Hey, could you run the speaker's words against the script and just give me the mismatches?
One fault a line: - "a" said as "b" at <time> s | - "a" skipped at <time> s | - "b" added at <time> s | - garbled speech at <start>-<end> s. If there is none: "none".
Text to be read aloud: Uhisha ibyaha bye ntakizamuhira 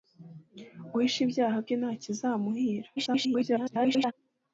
- garbled speech at 3.0-4.1 s